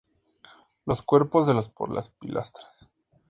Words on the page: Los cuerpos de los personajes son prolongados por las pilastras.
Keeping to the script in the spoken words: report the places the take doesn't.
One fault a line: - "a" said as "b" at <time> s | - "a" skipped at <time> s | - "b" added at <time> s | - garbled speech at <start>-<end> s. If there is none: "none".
- "personajes son prolongados" skipped at 1.7 s